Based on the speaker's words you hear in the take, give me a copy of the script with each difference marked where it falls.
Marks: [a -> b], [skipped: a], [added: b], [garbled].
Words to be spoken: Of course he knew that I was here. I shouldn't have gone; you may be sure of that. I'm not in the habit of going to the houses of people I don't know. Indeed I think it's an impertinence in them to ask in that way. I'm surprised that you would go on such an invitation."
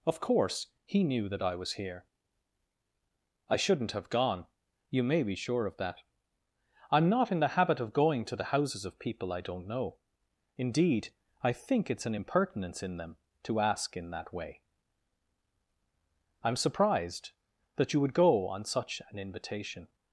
Of course he knew that I was here. I shouldn't have gone; you may be sure of that. I'm not in the habit of going to the houses of people I don't know. Indeed I think it's an impertinence in them to ask in that way. I'm surprised that you would go on such an invitation."